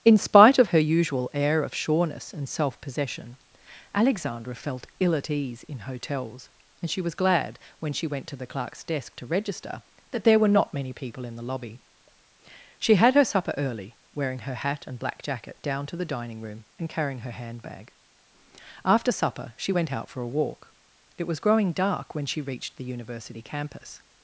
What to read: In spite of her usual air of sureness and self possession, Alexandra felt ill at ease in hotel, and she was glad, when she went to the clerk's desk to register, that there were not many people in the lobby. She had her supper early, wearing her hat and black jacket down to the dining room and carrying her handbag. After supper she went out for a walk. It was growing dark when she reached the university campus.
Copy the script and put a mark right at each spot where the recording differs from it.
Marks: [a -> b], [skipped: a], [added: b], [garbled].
In spite of her usual air of sureness and self possession, Alexandra felt ill at ease in [hotel, -> hotels] and she was glad, when she went to the clerk's desk to register, that there were not many people in the lobby. She had her supper early, wearing her hat and black jacket down to the dining room and carrying her handbag. After supper she went out for a walk. It was growing dark when she reached the university campus.